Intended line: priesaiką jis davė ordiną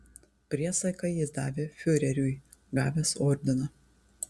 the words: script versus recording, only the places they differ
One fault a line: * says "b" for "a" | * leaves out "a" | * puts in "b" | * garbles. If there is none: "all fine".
* puts in "fiureriui gavęs"